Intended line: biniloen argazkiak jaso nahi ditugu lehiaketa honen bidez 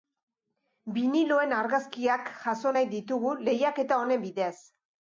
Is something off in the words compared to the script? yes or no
no